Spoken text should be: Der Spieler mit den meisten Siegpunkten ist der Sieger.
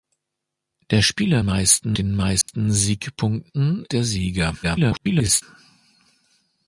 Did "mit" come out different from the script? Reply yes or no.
yes